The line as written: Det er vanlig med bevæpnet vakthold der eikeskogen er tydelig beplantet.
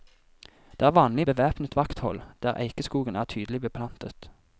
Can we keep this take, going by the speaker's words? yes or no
no